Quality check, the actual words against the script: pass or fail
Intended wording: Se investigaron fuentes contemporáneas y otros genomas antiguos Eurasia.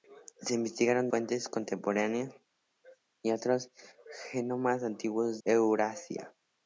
pass